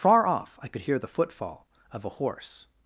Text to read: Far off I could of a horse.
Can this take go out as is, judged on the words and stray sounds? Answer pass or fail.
fail